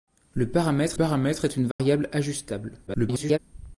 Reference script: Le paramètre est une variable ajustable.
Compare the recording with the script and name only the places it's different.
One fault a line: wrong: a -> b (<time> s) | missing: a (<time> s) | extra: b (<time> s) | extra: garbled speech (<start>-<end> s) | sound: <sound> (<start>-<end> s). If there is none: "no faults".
extra: paramètre (0.9 s)
sound: dropout (1.7-1.8 s)
extra: garbled speech (2.9-3.4 s)